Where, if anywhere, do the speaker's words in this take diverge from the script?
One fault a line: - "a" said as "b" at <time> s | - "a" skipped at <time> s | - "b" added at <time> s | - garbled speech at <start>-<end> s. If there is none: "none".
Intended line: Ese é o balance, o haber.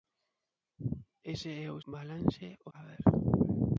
none